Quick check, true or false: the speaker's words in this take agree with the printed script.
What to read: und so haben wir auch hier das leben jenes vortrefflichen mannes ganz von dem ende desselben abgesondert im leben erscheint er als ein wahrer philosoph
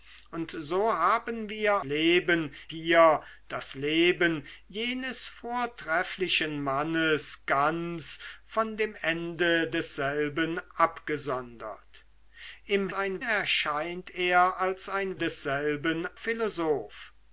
false